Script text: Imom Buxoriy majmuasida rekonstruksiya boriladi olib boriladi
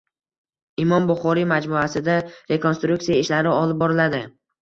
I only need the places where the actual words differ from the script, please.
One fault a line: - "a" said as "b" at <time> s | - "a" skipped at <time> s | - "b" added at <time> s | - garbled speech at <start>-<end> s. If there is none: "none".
- "boriladi" said as "ishlari" at 3.2 s